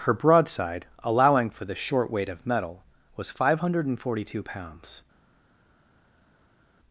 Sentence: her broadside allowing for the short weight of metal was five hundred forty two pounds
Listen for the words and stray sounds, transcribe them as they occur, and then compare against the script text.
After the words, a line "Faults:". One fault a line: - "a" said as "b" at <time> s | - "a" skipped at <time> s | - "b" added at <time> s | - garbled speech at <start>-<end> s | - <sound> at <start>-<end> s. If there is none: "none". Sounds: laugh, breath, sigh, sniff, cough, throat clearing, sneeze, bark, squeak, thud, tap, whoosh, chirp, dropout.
her broadside allowing for the short weight of metal was five hundred forty two pounds
Faults:
none